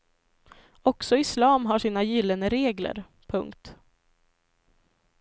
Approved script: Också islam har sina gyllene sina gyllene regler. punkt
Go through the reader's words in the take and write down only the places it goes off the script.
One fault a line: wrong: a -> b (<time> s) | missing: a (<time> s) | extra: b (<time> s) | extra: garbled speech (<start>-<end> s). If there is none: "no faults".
missing: sina gyllene (2.5 s)